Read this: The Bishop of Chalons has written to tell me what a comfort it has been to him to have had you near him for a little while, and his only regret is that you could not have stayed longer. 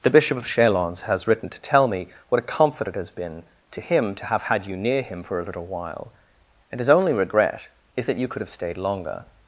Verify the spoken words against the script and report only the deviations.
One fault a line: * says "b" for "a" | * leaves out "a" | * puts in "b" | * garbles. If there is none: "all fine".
* leaves out "not"